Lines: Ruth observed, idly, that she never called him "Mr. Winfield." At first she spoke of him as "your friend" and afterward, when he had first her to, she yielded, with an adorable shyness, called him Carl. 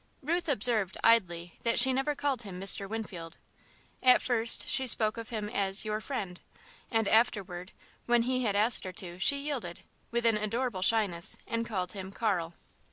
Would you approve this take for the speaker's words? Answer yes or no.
no